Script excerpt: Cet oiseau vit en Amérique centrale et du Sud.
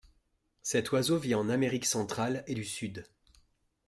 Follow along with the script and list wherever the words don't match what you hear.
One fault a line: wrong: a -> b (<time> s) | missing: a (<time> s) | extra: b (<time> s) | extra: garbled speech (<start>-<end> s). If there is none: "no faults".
no faults